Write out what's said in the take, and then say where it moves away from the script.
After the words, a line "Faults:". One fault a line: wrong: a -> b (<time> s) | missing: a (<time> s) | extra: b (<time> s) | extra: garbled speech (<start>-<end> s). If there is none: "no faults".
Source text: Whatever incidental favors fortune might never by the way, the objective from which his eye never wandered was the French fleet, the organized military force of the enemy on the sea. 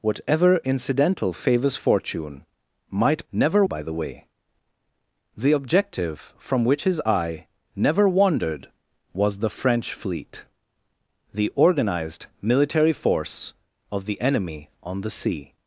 Whatever incidental favors fortune might never by the way, the objective from which his eye never wandered was the French fleet, the organized military force of the enemy on the sea.
Faults:
no faults